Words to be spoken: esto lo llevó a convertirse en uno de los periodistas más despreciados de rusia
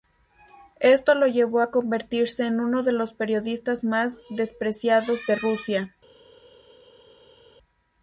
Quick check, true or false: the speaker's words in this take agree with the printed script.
true